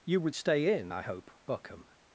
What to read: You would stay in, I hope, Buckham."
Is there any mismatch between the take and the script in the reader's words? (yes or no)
no